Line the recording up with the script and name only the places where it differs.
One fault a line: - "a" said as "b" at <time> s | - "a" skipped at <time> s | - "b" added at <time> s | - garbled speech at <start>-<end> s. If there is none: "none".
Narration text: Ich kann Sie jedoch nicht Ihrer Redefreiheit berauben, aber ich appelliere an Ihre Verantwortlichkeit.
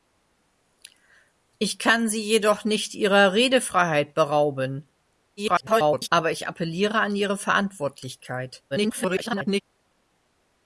- garbled speech at 5.4-6.1 s
- garbled speech at 8.7-9.6 s